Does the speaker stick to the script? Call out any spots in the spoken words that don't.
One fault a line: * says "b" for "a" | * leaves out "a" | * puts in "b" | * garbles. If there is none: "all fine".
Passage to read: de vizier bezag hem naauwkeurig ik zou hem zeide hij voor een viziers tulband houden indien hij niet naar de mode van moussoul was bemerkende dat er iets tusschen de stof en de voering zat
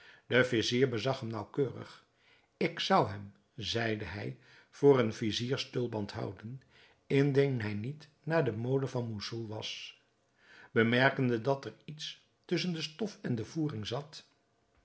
all fine